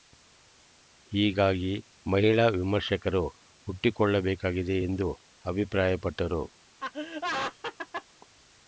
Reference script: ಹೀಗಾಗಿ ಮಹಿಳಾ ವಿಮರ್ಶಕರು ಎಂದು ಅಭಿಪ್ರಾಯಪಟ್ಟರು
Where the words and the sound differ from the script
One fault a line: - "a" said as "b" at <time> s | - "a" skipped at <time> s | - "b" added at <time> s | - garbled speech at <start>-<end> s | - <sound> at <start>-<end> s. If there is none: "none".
- "ಹುಟ್ಟಿಕೊಳ್ಳಬೇಕಾಗಿದೆ" added at 3.7 s
- laugh at 6.8-8.0 s